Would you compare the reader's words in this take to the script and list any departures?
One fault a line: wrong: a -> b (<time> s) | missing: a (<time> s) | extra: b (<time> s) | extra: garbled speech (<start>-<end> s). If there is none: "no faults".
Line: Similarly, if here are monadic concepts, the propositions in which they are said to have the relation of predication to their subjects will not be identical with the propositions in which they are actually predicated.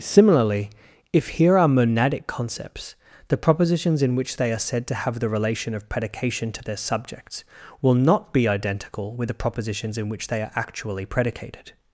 no faults